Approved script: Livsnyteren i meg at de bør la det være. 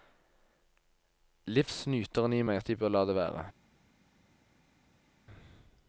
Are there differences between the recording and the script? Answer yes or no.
no